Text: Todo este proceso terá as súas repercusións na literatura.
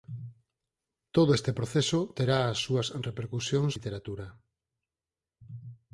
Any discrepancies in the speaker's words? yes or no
yes